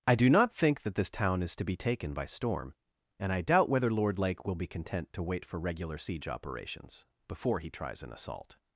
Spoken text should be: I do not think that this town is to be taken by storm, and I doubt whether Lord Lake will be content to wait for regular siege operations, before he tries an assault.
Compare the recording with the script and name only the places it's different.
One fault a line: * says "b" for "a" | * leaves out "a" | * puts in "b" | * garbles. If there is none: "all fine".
all fine